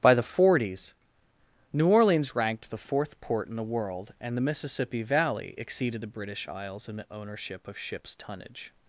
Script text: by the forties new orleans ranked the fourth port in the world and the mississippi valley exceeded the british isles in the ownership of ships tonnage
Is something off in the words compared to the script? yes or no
no